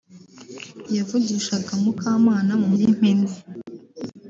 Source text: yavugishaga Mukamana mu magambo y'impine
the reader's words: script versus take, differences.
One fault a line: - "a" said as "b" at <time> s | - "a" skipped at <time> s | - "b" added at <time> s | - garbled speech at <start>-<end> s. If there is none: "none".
- "magambo" skipped at 2.7 s